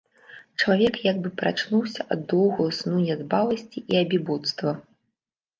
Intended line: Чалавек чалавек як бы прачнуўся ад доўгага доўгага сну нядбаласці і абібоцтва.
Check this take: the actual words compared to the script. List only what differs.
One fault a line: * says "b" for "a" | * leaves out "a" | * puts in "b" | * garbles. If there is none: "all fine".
* leaves out "чалавек"
* leaves out "доўгага"